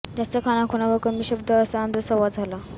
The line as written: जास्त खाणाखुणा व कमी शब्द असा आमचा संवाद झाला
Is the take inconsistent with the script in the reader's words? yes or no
no